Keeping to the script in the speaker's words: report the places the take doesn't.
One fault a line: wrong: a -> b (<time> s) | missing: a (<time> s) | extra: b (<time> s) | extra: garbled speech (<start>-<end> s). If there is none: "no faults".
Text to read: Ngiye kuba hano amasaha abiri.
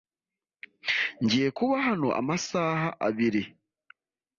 no faults